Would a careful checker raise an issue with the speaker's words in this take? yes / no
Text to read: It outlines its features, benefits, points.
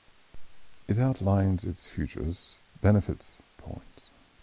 no